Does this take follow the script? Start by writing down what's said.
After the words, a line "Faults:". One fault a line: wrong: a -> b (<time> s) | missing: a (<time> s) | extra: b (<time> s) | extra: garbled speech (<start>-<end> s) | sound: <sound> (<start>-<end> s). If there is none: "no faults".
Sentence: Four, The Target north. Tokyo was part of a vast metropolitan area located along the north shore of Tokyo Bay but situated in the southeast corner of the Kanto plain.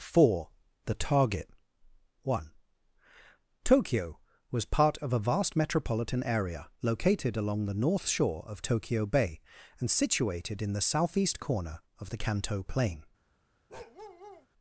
Four, The Target one. Tokyo was part of a vast metropolitan area located along the north shore of Tokyo Bay and situated in the southeast corner of the Kanto plain.
Faults:
wrong: north -> one (2.2 s)
wrong: but -> and (9.8 s)
sound: bark (13.7-14.5 s)